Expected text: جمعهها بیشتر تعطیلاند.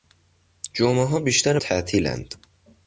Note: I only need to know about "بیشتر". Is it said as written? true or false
true